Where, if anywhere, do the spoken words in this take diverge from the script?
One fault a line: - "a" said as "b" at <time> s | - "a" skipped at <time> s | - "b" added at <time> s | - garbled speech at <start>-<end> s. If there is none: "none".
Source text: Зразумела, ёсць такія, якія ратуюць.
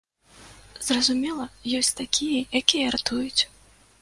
none